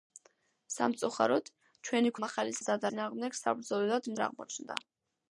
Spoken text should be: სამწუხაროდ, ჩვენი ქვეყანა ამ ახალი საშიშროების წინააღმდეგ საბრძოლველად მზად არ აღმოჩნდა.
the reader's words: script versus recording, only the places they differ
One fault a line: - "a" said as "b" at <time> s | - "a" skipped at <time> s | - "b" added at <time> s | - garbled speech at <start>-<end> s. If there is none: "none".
- "ქვეყანა" skipped at 2.1 s
- "საშიშროების" said as "მზად" at 2.6 s
- "მზად" skipped at 4.1 s